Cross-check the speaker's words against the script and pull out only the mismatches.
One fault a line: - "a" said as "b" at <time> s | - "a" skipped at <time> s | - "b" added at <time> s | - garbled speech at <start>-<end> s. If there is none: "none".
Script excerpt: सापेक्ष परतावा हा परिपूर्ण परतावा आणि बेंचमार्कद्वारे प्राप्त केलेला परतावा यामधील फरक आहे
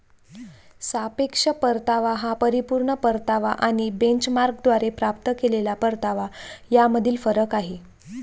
none